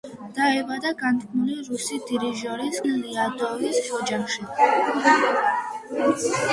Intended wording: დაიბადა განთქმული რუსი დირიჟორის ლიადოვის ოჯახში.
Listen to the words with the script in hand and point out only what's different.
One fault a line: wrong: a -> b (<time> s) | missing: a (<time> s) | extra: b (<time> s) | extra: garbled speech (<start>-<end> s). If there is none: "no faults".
no faults